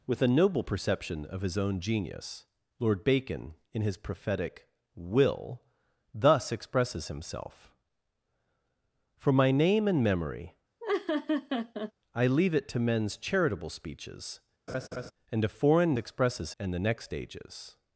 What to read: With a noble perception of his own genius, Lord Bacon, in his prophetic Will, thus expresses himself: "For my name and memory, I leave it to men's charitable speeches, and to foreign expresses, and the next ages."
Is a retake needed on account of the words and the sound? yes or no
yes